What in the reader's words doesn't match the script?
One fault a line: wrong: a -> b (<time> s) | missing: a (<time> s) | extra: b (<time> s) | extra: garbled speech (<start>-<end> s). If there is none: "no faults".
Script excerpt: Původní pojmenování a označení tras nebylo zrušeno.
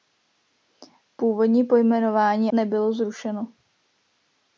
missing: a označení tras (2.5 s)